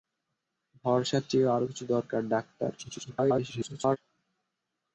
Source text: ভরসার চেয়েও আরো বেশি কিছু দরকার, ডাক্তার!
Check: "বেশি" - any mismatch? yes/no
yes